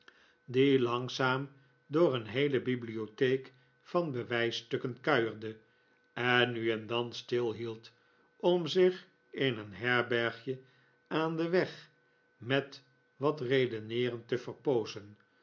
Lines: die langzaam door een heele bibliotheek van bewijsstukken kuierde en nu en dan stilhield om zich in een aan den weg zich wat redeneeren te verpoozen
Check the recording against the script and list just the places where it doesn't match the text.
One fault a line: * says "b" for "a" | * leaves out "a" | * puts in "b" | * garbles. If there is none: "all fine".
* puts in "herbergje"
* says "met" for "zich"